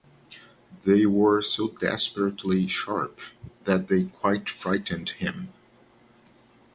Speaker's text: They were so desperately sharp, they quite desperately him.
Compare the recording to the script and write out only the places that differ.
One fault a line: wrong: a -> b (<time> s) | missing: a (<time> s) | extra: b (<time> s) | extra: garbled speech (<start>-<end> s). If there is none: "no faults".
extra: that (3.6 s)
wrong: desperately -> frightened (4.5 s)